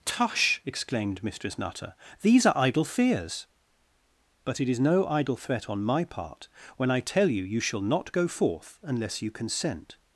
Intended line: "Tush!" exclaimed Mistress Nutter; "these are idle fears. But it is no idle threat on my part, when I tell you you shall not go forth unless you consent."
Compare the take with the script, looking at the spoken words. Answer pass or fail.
pass